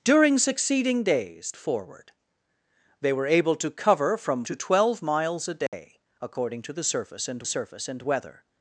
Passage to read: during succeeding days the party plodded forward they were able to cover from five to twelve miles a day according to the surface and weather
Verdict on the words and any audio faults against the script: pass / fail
fail